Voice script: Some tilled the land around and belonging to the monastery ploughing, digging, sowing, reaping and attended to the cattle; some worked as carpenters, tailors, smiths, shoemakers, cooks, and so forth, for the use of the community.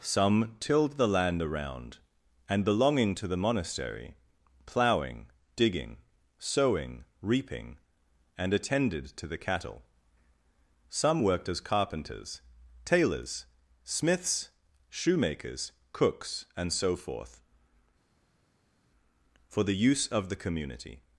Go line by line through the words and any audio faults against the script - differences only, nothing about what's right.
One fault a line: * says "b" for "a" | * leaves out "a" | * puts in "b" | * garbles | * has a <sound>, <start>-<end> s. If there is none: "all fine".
all fine